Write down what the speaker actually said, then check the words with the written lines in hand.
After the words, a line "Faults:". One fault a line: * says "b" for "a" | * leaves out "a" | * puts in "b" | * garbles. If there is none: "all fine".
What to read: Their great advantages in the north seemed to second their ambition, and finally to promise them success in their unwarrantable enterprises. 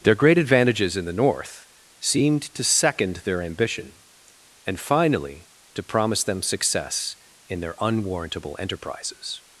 Their great advantages in the north seemed to second their ambition, and finally to promise them success in their unwarrantable enterprises.
Faults:
all fine